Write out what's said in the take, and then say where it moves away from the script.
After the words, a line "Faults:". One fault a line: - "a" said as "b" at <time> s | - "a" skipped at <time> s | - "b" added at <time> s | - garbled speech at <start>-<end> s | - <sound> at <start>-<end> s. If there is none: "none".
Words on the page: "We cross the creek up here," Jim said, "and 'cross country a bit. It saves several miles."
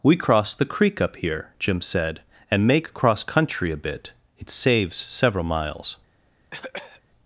"We cross the creek up here," Jim said, "and make 'cross country a bit. It saves several miles."
Faults:
- "make" added at 2.6 s
- cough at 6.5-7.0 s